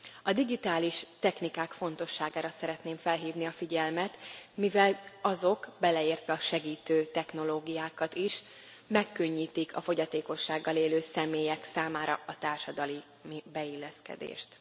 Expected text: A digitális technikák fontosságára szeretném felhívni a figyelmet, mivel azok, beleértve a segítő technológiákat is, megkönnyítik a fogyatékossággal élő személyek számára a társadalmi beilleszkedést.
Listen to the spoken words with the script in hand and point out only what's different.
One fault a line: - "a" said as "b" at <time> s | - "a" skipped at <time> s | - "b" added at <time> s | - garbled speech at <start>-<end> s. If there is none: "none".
none